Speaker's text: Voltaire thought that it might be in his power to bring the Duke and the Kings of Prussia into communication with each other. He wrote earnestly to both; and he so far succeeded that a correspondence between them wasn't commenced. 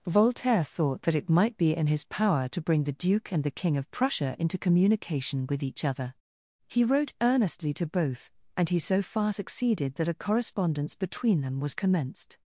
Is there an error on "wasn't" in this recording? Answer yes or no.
yes